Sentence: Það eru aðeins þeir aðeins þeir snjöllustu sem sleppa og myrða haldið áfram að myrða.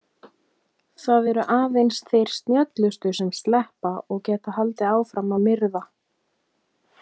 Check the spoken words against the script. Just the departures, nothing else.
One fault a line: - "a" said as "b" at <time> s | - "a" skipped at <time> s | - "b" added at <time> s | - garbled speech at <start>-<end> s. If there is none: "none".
- "aðeins þeir" skipped at 2.3 s
- "myrða" said as "geta" at 4.3 s